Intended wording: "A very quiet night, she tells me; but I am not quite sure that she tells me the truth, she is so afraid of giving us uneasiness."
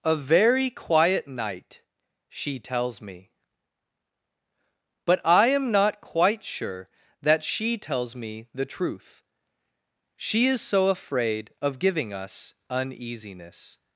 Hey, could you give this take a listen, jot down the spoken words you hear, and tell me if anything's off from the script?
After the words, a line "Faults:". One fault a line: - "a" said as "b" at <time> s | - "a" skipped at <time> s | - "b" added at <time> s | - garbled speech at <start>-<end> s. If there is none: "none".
"A very quiet night, she tells me; but I am not quite sure that she tells me the truth, she is so afraid of giving us uneasiness."
Faults:
none